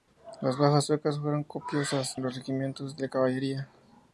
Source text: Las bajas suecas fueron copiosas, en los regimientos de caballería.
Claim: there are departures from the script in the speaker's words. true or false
false